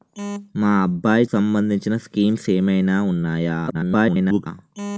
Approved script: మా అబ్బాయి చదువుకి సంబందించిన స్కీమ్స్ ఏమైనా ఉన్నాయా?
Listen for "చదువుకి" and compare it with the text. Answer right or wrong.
wrong